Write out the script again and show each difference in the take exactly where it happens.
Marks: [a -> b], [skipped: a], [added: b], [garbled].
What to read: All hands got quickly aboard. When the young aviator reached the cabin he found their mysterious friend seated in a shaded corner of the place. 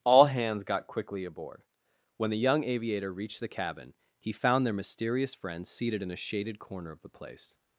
All hands got quickly aboard. When the young aviator reached the cabin he found their mysterious friend seated in a shaded corner of the place.